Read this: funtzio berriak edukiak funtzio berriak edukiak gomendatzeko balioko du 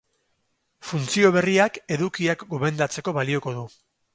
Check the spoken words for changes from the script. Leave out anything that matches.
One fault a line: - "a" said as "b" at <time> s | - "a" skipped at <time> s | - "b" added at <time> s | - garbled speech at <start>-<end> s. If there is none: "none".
- "funtzio berriak edukiak" skipped at 2.5 s